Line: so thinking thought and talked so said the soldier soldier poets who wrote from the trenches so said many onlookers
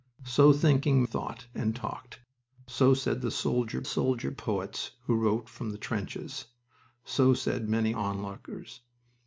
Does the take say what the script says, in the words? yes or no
yes